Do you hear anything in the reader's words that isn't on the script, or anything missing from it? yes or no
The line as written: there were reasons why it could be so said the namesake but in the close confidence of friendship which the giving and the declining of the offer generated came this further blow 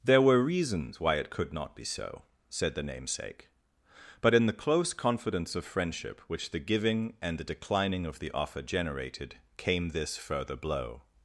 yes